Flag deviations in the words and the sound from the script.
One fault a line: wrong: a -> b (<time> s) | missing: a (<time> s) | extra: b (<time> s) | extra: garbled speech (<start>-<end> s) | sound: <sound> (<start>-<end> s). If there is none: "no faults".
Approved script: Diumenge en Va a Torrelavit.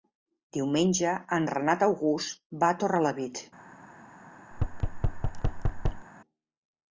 extra: Renat August (1.5 s)
sound: thud (4.5-6.1 s)